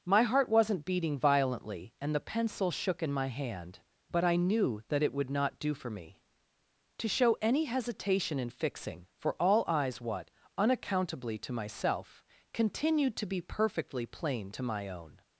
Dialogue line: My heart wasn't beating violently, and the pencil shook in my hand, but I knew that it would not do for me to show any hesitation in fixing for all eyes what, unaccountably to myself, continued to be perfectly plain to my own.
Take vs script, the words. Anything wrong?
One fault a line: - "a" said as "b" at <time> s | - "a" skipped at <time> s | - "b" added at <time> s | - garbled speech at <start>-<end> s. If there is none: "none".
none